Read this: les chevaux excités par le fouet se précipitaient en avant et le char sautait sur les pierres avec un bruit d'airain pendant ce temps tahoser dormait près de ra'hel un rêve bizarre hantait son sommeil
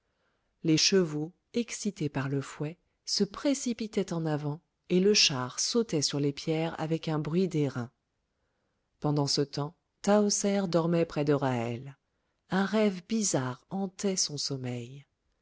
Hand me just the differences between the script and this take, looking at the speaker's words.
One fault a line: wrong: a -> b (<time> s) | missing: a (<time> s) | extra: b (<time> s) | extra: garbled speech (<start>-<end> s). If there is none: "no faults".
no faults